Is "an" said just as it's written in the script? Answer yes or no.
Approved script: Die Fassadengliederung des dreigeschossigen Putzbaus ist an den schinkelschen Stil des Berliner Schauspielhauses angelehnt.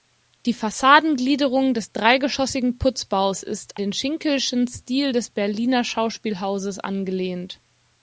no